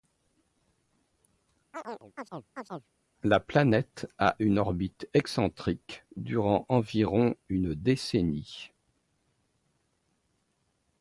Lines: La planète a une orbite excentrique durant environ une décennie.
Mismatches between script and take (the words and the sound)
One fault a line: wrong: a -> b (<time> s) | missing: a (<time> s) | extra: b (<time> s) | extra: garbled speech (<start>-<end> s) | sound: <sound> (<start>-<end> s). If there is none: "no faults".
sound: chirp (1.7-2.9 s)